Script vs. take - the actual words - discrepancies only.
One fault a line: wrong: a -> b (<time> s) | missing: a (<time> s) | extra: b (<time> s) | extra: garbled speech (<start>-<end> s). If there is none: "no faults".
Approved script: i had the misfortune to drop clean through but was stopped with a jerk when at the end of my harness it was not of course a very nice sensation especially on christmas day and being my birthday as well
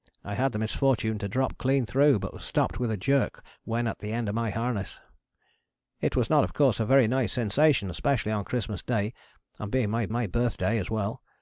extra: my (10.1 s)